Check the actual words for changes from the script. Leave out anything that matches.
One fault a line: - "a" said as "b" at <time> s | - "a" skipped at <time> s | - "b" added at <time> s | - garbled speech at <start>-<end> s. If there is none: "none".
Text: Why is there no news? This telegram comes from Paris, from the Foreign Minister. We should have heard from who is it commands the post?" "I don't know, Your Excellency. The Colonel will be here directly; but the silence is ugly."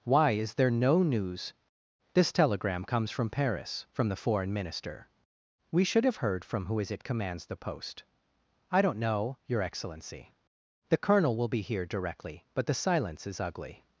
none